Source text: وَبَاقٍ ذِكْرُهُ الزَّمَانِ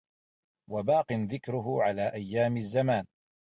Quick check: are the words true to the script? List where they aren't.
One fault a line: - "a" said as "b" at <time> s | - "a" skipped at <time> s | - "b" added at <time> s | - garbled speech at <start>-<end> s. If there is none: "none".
- "عَلَى أَيَّامِ" added at 1.8 s